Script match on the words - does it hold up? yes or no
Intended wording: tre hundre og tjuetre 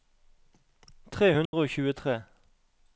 yes